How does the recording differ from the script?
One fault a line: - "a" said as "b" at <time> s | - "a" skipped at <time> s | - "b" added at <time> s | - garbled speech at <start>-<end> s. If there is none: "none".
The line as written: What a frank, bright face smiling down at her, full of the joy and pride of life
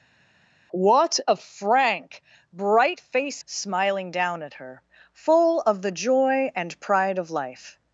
none